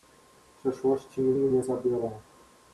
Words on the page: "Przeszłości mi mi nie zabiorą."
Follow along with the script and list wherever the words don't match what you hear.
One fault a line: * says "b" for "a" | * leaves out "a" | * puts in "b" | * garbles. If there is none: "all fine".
all fine